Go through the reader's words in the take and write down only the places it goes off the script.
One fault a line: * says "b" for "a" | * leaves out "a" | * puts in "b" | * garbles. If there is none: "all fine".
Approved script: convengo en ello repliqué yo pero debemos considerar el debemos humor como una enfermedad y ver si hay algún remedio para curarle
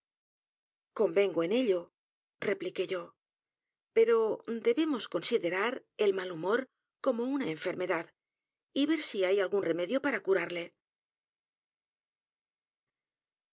* says "mal" for "debemos"